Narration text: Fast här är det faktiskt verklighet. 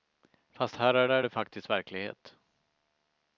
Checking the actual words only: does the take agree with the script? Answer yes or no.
no